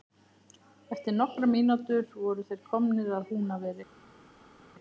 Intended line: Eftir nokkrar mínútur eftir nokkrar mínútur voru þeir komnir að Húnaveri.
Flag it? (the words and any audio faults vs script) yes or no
yes